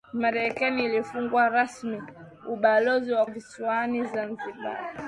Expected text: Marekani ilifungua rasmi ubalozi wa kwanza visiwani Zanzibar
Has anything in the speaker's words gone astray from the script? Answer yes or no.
yes